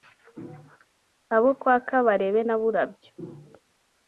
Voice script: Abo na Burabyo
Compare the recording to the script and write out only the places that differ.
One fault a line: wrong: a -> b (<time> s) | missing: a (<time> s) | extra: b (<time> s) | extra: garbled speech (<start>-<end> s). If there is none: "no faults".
extra: kwa Kabarebe (1.6 s)